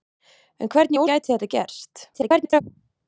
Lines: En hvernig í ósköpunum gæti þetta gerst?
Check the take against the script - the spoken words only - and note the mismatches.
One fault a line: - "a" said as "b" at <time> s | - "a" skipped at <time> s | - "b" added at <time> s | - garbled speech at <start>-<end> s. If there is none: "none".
- "ósköpunum" skipped at 1.0 s
- garbled speech at 2.1-2.6 s